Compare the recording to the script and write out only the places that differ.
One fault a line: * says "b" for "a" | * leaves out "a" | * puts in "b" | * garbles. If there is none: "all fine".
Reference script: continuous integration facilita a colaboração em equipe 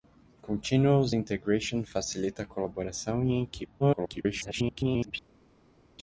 * garbles